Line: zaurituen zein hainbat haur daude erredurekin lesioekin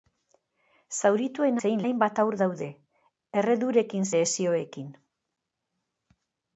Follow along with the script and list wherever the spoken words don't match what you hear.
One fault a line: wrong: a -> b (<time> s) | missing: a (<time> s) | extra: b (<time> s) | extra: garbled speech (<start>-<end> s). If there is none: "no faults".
no faults